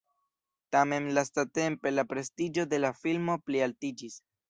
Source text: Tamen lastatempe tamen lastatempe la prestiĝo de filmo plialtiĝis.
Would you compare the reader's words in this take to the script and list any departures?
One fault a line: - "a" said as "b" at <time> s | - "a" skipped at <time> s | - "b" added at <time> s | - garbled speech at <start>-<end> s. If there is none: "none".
- "tamen lastatempe" skipped at 1.9 s
- "la" added at 2.8 s